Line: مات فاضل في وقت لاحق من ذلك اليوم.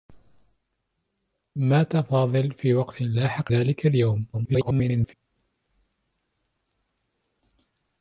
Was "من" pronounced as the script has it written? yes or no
no